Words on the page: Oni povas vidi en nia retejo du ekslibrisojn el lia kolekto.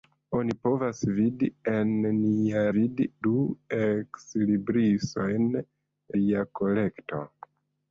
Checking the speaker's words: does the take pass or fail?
fail